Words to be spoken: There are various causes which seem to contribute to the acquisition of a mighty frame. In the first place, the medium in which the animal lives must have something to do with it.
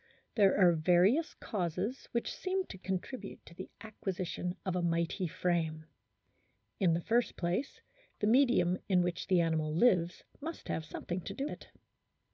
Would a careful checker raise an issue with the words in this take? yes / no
yes